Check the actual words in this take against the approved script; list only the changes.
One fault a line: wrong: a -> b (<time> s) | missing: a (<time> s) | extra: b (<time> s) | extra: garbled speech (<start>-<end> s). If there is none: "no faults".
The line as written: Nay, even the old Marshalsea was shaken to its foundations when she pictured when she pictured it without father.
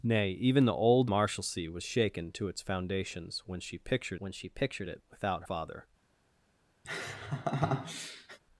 no faults